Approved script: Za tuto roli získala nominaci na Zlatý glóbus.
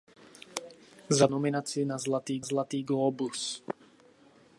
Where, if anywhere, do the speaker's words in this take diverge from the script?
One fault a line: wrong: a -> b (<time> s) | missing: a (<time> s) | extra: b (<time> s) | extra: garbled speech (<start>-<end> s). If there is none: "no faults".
missing: tuto roli získala (1.3 s)
extra: Zlatý (2.4 s)